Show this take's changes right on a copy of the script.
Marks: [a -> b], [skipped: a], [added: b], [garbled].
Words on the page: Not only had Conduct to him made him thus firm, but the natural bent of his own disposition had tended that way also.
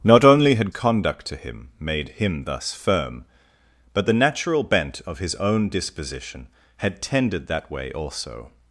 Not only had Conduct to him made him thus firm, but the natural bent of his own disposition had tended that way also.